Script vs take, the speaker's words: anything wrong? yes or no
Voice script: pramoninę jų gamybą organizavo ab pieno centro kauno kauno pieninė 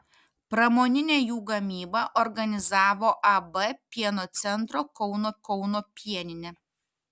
no